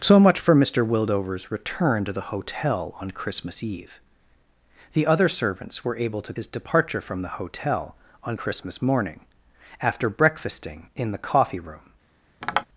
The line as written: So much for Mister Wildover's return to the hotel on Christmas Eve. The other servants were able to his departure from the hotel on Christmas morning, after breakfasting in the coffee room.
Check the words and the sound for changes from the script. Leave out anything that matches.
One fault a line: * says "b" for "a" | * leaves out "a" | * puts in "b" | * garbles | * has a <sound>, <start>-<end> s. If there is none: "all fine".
* has a tap, 12.4-12.6 s